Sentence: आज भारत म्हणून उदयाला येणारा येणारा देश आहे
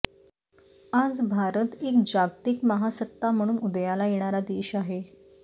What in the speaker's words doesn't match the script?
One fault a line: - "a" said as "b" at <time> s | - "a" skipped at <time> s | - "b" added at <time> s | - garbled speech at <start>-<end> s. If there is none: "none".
- "एक जागतिक महासत्ता" added at 1.8 s
- "येणारा" skipped at 4.4 s